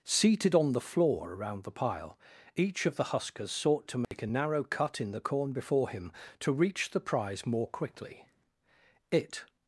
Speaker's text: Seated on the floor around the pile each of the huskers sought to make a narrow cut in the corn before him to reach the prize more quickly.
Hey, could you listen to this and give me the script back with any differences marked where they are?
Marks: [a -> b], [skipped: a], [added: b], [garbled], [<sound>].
Seated on the floor around the pile each of the huskers sought to make [dropout] a narrow cut in the corn before him to reach the prize more quickly. [added: It]